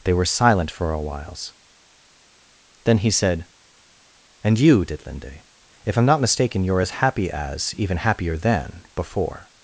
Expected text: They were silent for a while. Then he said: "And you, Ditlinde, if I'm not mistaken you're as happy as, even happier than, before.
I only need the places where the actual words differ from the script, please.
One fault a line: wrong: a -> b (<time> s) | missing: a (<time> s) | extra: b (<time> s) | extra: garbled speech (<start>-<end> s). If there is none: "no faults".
wrong: while -> whiles (1.0 s)